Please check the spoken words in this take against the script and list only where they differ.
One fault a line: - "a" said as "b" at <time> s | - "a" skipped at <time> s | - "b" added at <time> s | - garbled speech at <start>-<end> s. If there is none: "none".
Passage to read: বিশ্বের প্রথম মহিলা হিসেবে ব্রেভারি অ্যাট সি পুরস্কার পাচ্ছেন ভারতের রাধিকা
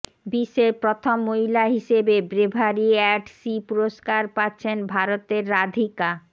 none